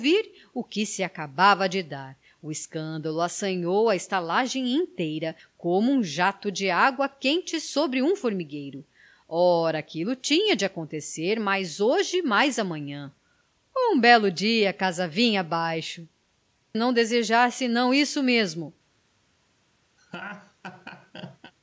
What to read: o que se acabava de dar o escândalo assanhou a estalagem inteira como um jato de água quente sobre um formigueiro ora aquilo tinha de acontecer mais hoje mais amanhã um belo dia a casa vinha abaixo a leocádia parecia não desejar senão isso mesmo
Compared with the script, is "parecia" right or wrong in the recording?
wrong